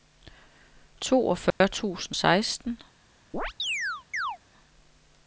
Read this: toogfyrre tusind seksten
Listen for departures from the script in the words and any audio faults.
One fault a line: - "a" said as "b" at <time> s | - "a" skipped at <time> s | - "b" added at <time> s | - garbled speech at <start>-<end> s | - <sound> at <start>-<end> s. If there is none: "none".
- dropout at 1.5-1.6 s
- chirp at 3.3-4.4 s